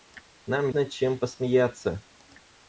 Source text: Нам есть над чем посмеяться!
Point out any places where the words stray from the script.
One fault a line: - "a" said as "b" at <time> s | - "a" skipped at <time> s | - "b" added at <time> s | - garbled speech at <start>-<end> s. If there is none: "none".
- "есть" skipped at 0.7 s